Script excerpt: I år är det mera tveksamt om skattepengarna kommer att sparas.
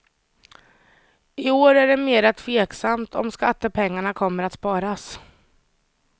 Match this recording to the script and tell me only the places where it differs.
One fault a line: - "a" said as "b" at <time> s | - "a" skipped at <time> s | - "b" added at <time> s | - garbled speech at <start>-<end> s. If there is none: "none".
none